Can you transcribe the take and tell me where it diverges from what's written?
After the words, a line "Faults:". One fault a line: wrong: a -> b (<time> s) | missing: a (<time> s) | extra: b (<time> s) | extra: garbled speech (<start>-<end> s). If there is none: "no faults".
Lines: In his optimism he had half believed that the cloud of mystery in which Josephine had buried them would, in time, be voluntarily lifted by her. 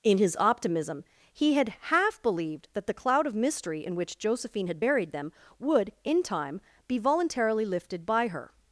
In his optimism he had half believed that the cloud of mystery in which Josephine had buried them would, in time, be voluntarily lifted by her.
Faults:
no faults